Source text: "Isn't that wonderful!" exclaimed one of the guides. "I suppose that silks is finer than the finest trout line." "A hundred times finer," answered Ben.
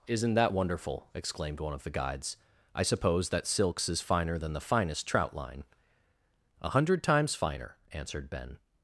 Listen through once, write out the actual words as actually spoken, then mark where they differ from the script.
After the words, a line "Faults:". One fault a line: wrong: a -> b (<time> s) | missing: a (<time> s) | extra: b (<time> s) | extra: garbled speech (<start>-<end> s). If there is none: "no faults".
"Isn't that wonderful!" exclaimed one of the guides. "I suppose that silks is finer than the finest trout line." "A hundred times finer," answered Ben.
Faults:
no faults